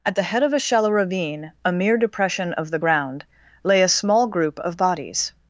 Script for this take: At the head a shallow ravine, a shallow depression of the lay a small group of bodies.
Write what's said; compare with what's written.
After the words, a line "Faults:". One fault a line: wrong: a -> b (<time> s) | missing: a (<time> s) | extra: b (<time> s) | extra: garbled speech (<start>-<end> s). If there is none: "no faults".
At the head of a shallow ravine, a mere depression of the ground, lay a small group of bodies.
Faults:
extra: of (0.4 s)
wrong: shallow -> mere (1.7 s)
extra: ground (2.8 s)